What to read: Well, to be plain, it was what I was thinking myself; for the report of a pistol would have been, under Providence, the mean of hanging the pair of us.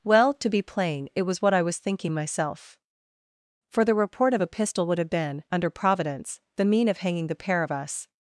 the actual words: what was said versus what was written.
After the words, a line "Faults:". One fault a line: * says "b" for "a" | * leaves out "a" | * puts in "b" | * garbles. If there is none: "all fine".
Well, to be plain, it was what I was thinking myself; for the report of a pistol would have been, under Providence, the mean of hanging the pair of us.
Faults:
all fine